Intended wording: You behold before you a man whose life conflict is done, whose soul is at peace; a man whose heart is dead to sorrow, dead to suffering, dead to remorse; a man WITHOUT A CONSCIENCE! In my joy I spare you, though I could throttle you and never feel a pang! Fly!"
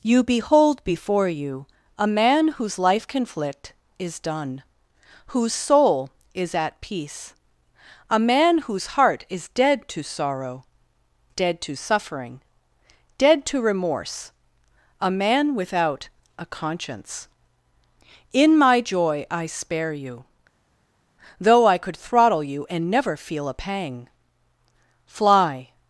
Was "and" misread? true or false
false